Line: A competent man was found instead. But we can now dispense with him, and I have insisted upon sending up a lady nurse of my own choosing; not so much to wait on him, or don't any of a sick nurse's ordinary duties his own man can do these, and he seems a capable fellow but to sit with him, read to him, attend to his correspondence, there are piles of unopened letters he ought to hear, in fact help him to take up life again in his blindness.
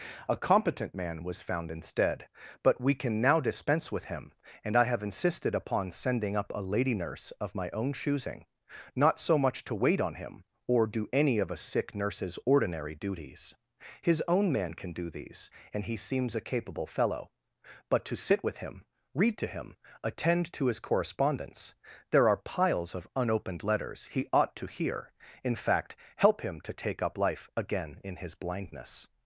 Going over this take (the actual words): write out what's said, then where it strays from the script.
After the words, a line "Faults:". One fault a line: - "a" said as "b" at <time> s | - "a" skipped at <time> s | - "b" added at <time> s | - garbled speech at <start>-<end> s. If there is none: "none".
A competent man was found instead. But we can now dispense with him, and I have insisted upon sending up a lady nurse of my own choosing; not so much to wait on him, or do any of a sick nurse's ordinary duties his own man can do these, and he seems a capable fellow but to sit with him, read to him, attend to his correspondence, there are piles of unopened letters he ought to hear, in fact help him to take up life again in his blindness.
Faults:
- "don't" said as "do" at 10.9 s